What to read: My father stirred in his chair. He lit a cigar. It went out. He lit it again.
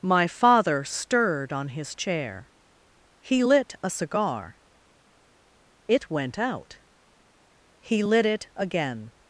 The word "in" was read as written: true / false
false